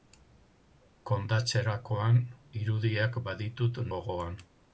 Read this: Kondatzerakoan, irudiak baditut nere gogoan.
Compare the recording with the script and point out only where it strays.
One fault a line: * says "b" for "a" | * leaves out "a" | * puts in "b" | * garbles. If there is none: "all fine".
* leaves out "nere"